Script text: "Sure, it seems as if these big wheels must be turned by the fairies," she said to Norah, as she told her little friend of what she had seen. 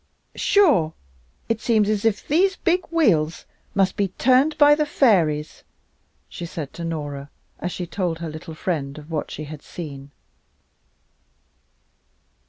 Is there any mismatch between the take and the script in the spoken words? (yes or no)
no